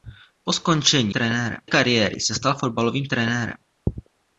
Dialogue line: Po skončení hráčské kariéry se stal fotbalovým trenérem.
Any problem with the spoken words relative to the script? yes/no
yes